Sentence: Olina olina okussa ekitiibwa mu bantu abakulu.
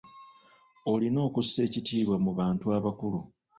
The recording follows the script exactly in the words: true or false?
false